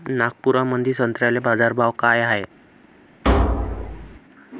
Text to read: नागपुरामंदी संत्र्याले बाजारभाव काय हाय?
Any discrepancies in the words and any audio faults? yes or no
yes